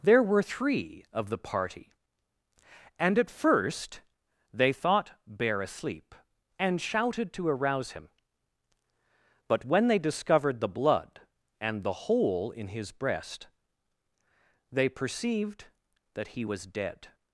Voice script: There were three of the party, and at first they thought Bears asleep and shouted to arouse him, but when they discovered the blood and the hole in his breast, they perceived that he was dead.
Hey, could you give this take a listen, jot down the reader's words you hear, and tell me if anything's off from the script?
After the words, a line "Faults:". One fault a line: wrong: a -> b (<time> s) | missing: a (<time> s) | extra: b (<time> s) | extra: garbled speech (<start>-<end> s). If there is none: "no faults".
There were three of the party, and at first they thought Bear asleep and shouted to arouse him, but when they discovered the blood and the hole in his breast, they perceived that he was dead.
Faults:
wrong: Bears -> Bear (5.3 s)